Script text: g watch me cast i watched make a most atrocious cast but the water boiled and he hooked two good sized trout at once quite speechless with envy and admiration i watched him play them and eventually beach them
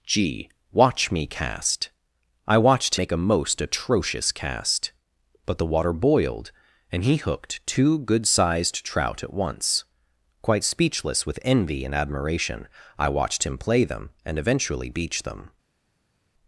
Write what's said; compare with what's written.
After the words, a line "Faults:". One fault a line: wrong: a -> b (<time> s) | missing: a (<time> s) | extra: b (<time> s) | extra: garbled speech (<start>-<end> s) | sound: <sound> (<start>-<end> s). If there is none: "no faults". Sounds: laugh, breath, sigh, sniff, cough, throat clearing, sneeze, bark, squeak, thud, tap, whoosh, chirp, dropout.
g watch me cast i watched make a most atrocious cast but the water boiled and he hooked two good sized trout at once quite speechless with envy and admiration i watched him play them and eventually beach them
Faults:
no faults